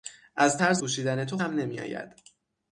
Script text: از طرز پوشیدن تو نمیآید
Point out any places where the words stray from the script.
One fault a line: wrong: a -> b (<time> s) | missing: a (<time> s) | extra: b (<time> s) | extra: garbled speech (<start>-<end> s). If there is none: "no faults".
no faults